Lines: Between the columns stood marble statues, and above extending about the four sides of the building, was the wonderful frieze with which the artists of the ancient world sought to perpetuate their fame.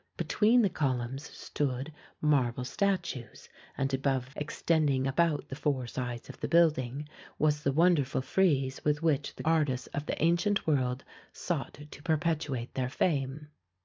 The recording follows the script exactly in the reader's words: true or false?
true